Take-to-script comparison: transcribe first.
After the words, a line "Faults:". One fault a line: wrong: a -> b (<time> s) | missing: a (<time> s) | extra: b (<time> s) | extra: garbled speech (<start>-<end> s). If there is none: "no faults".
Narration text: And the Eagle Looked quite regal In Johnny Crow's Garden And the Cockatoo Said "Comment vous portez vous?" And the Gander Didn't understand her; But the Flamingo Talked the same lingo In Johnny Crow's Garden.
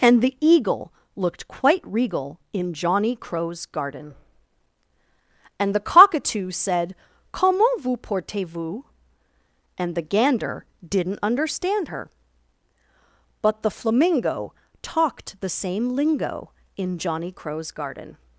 And the Eagle Looked quite regal In Johnny Crow's Garden And the Cockatoo Said "Comment vous portez vous?" And the Gander Didn't understand her; But the Flamingo Talked the same lingo In Johnny Crow's Garden.
Faults:
no faults